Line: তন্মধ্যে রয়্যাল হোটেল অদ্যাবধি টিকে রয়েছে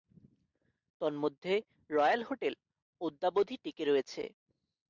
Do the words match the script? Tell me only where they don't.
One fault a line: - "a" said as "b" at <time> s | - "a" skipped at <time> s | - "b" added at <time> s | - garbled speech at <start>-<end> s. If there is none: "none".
none